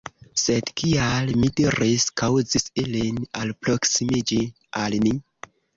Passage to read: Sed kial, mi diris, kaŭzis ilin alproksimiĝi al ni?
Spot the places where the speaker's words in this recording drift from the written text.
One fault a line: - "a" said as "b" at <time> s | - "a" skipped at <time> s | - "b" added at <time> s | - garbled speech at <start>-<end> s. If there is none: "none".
none